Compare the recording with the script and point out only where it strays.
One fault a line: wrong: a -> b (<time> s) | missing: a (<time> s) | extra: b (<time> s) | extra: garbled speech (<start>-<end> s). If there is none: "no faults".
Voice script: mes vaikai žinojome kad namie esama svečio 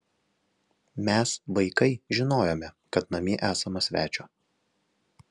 no faults